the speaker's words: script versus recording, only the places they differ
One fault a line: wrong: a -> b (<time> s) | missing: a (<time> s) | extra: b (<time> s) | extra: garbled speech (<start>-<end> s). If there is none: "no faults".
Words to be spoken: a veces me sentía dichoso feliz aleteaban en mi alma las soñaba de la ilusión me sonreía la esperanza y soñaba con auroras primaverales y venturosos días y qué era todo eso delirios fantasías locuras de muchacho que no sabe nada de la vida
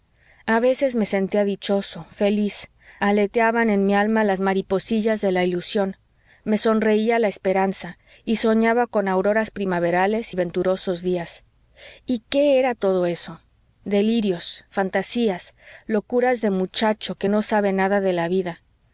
wrong: soñaba -> mariposillas (4.4 s)